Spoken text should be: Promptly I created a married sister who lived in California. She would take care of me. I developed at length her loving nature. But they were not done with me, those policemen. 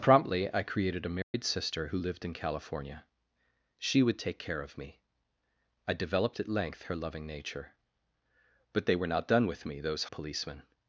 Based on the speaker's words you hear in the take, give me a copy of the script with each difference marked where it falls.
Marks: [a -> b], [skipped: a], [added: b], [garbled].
Promptly I created a married sister who lived in California. She would take care of me. I developed at length her loving nature. But they were not done with me, those policemen.